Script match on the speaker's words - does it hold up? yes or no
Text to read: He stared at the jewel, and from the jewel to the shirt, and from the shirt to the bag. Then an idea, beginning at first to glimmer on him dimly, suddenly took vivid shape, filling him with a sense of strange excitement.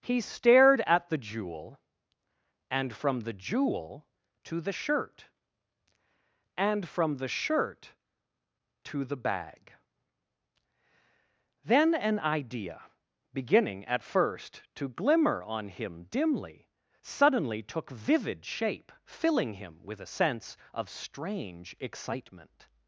yes